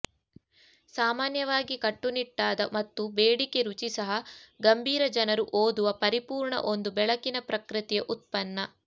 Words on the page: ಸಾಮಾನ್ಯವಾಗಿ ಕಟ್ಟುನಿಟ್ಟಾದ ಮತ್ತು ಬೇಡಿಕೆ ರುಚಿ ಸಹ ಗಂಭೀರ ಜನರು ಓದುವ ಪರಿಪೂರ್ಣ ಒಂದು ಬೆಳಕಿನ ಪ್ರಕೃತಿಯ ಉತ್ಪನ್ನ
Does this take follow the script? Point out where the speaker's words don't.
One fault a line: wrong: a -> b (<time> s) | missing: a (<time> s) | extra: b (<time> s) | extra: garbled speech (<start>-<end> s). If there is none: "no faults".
no faults